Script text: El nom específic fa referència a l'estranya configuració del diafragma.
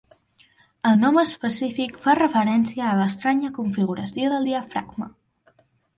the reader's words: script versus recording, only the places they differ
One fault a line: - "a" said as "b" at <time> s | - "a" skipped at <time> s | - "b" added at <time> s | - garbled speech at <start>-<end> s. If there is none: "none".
none